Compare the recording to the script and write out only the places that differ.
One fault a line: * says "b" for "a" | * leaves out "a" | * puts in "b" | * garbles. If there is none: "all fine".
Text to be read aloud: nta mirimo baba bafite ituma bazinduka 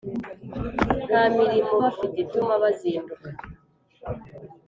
* leaves out "baba"